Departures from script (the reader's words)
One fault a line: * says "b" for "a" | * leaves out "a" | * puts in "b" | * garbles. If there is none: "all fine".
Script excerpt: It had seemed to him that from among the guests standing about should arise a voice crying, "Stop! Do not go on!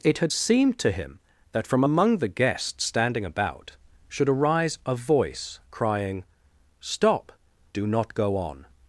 all fine